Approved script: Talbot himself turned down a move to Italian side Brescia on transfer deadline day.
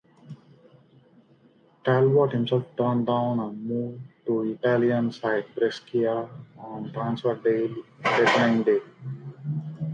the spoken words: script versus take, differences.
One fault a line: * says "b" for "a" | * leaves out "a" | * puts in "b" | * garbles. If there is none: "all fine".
all fine